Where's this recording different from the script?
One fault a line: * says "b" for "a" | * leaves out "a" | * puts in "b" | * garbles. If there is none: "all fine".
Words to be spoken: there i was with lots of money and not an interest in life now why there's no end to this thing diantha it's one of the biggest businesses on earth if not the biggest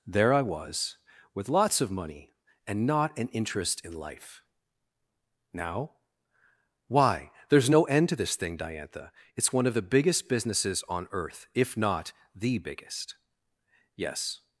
* puts in "yes"